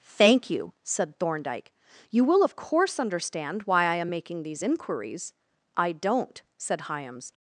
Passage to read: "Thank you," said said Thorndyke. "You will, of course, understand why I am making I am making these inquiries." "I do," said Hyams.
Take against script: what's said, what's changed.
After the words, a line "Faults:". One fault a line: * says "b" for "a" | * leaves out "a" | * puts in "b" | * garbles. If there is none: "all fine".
"Thank you," said Thorndyke. "You will, of course, understand why I am making these inquiries." "I don't," said Hyams.
Faults:
* leaves out "said"
* leaves out "I am making"
* says "don't" for "do"